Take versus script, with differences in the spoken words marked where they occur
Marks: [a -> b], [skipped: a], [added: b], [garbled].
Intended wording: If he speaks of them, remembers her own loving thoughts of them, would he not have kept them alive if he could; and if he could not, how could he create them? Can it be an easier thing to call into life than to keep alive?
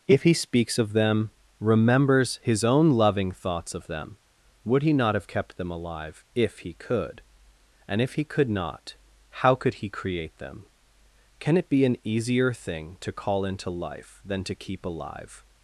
If he speaks of them, remembers [her -> his] own loving thoughts of them, would he not have kept them alive if he could; and if he could not, how could he create them? Can it be an easier thing to call into life than to keep alive?